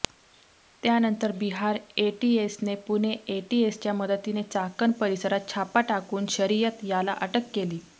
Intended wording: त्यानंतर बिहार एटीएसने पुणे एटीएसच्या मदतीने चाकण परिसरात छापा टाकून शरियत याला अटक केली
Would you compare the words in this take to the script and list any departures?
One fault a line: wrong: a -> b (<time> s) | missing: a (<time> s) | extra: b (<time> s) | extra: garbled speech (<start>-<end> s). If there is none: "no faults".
no faults